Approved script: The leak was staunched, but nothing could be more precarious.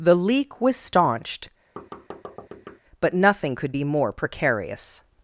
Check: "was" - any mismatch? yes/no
no